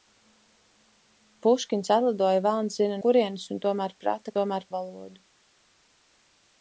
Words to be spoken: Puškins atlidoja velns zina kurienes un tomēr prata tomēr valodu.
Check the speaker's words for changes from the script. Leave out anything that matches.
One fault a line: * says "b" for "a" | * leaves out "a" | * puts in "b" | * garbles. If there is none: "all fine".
all fine